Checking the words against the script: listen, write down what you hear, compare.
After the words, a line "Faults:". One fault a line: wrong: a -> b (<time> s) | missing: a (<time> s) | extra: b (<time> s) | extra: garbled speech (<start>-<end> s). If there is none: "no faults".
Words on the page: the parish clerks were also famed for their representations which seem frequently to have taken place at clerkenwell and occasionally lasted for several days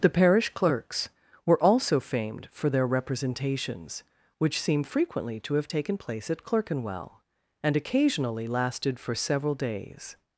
the parish clerks were also famed for their representations which seem frequently to have taken place at clerkenwell and occasionally lasted for several days
Faults:
no faults